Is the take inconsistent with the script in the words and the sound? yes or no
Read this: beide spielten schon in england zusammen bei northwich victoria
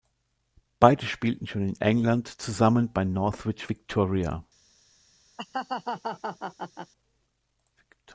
yes